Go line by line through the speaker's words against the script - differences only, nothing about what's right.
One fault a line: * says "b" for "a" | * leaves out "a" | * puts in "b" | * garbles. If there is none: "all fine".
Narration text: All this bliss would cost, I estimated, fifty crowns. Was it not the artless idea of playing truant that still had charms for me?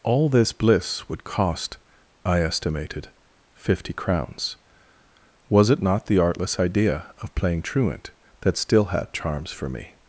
all fine